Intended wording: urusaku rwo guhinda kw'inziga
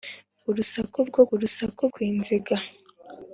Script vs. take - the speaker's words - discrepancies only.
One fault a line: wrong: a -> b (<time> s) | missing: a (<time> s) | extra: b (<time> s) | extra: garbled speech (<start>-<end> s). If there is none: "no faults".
wrong: guhinda -> urusaku (1.3 s)